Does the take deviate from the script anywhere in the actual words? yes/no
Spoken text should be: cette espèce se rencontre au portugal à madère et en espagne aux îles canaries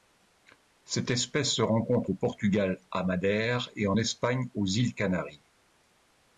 no